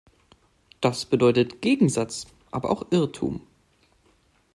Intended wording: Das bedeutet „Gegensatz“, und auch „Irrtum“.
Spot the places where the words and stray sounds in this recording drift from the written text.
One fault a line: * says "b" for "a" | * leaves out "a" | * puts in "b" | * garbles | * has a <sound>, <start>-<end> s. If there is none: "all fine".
* says "aber" for "und"